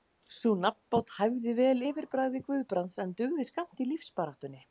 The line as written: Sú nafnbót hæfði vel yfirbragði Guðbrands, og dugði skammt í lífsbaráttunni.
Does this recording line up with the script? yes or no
no